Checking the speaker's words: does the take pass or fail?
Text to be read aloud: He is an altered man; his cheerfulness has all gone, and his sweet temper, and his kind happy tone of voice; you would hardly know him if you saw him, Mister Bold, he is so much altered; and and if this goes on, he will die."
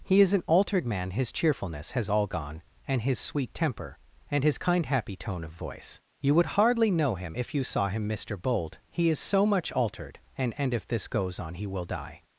pass